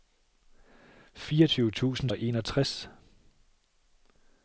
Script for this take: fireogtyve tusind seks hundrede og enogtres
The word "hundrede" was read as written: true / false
false